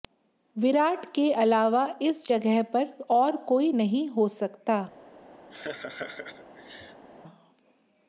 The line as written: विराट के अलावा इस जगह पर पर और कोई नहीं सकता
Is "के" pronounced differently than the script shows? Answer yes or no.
no